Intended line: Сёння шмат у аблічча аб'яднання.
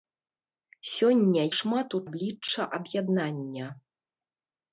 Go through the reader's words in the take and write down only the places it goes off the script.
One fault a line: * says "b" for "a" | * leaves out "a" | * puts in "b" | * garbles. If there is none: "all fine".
all fine